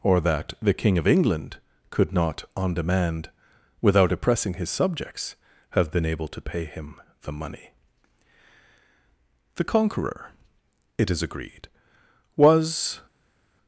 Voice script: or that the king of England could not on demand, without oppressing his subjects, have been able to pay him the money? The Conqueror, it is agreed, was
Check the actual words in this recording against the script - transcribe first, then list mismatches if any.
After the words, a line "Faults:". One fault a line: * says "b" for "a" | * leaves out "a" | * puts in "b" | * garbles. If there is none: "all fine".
or that the king of England could not on demand, without oppressing his subjects, have been able to pay him the money? The Conqueror, it is agreed, was
Faults:
all fine